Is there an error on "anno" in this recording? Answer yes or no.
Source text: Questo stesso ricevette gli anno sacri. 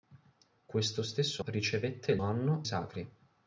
no